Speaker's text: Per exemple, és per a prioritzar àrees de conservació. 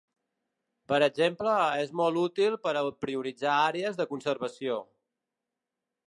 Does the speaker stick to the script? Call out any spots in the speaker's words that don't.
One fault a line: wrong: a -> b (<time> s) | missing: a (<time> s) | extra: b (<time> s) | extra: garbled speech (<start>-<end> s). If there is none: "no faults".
extra: molt útil (2.0 s)